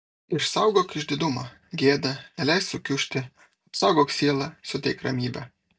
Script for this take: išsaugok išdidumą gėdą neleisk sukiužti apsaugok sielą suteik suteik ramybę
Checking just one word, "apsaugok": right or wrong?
right